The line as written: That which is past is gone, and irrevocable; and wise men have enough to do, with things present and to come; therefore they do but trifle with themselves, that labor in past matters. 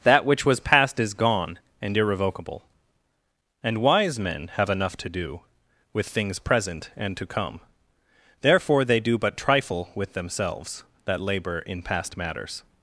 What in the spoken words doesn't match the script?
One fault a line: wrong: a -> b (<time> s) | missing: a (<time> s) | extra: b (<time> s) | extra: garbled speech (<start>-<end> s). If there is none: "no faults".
wrong: is -> was (0.5 s)